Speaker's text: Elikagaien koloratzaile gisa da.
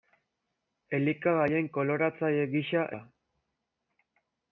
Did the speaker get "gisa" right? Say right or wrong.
right